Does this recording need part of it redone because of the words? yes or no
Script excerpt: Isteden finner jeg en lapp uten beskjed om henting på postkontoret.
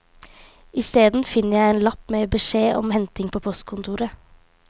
yes